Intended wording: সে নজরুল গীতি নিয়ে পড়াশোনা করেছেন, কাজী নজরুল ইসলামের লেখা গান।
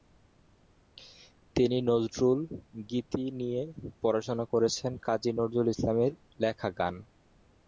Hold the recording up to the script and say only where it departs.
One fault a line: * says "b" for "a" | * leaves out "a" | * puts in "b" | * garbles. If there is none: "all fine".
* says "তিনি" for "সে"